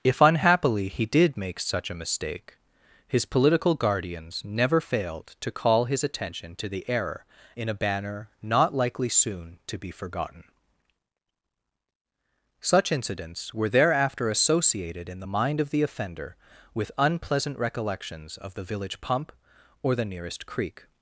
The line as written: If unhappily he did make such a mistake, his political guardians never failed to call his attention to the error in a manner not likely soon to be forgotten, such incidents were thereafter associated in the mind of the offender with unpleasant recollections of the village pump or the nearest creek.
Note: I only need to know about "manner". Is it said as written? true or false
false